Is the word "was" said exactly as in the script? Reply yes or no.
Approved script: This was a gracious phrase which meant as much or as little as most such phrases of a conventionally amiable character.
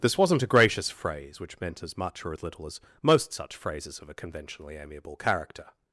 no